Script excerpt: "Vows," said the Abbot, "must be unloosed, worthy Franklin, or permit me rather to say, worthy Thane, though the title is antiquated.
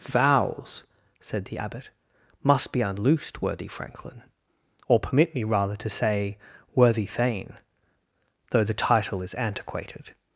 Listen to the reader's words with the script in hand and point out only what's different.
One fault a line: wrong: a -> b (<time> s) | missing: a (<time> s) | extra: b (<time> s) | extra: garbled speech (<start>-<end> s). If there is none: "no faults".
no faults